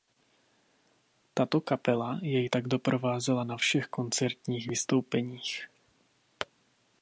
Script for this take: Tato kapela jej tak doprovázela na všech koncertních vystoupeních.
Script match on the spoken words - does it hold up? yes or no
yes